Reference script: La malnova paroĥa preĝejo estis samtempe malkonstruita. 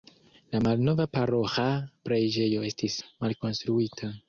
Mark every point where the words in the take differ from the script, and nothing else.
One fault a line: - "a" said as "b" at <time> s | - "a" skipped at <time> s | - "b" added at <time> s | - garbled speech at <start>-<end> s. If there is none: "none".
- "samtempe" skipped at 3.0 s